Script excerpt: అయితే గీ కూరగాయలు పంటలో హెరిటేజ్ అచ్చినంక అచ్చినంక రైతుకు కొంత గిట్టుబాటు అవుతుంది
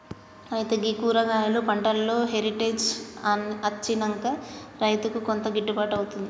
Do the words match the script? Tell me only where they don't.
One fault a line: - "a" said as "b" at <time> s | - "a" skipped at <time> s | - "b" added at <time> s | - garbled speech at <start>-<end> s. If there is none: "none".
- "అచ్చినంక" skipped at 4.2 s